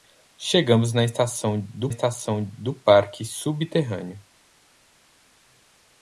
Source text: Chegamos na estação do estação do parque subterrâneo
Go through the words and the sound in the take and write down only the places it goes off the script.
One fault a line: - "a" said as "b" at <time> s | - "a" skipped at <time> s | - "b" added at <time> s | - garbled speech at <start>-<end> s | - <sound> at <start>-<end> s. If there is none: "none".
none